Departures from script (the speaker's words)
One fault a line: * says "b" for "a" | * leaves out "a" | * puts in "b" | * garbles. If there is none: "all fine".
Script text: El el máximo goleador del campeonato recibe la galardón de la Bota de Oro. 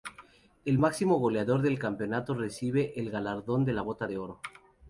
* leaves out "el"
* says "el" for "la"